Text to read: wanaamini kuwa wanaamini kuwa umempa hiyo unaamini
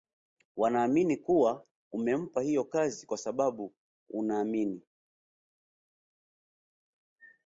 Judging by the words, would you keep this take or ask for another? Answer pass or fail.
fail